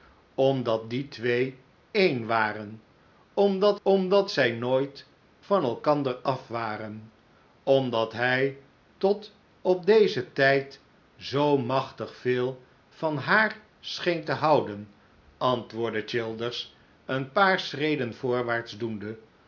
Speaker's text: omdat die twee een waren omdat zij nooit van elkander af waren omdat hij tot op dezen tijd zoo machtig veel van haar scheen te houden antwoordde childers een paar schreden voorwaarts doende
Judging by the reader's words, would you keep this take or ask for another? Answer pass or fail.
fail